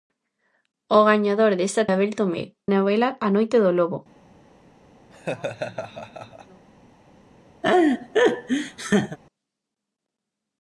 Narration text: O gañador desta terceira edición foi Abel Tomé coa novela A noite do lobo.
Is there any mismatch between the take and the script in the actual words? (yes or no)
yes